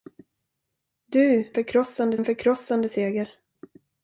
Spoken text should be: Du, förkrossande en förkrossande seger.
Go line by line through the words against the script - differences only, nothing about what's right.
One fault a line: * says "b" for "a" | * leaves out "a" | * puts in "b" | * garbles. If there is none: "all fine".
all fine